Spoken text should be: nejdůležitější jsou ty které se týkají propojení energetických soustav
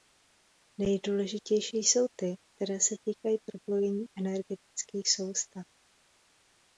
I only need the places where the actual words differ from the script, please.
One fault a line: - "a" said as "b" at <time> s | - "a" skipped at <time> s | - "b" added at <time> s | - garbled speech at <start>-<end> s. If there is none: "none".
none